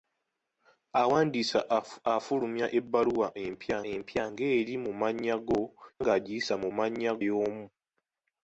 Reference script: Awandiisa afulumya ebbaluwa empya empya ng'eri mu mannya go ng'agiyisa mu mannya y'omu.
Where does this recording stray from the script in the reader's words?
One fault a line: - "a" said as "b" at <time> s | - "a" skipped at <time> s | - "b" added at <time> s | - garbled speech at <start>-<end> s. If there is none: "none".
none